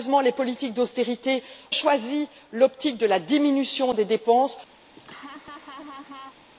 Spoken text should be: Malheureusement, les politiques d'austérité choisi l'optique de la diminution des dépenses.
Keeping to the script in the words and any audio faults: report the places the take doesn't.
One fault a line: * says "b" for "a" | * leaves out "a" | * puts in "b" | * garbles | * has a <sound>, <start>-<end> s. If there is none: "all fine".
* has a laugh, 5.0-6.5 s